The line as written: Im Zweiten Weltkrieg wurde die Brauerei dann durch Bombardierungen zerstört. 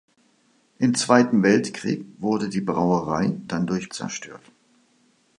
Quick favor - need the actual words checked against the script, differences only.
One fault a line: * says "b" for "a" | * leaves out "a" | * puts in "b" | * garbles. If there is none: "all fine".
* leaves out "Bombardierungen"